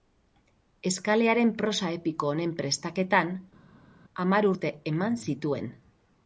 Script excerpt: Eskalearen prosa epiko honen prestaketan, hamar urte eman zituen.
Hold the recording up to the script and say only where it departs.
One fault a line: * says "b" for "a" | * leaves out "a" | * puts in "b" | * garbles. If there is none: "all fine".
all fine